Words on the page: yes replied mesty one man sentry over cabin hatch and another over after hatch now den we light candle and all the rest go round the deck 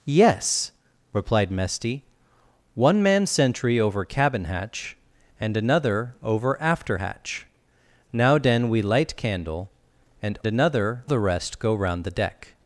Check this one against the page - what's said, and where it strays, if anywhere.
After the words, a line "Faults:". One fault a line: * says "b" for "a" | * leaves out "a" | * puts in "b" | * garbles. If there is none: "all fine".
yes replied mesty one man sentry over cabin hatch and another over after hatch now den we light candle and another the rest go round the deck
Faults:
* says "another" for "all"